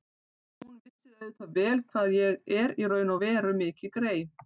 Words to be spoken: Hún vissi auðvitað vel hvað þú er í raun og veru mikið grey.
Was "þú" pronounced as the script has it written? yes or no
no